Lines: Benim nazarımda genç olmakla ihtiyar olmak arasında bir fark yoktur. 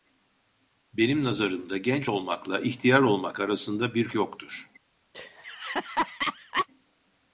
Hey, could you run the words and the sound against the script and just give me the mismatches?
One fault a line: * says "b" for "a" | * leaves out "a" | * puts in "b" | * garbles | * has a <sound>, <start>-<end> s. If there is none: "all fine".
* leaves out "fark"
* has a laugh, 5.1-6.7 s